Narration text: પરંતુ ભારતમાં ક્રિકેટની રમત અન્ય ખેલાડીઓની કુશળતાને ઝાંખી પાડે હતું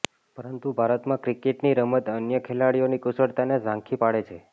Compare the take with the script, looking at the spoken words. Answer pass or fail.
fail